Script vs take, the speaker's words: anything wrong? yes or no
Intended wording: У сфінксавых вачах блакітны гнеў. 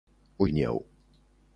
yes